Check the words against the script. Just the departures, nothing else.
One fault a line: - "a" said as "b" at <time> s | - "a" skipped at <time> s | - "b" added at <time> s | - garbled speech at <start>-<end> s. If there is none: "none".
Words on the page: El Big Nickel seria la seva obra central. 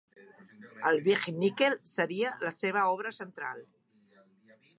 none